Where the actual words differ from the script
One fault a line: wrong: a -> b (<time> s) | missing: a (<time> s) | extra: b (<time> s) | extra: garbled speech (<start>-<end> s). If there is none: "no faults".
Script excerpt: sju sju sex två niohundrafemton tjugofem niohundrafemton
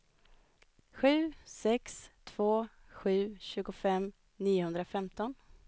missing: sju (1.3 s)
wrong: niohundrafemton -> sju (2.9 s)